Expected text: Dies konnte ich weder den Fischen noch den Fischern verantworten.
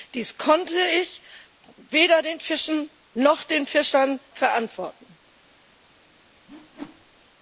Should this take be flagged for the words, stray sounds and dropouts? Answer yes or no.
yes